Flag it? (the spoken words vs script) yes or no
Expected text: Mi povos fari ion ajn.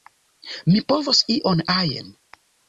yes